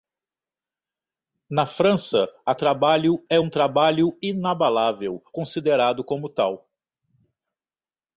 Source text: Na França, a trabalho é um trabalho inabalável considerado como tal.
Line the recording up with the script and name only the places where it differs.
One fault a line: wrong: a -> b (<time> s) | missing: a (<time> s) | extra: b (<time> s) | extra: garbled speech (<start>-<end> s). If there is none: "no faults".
no faults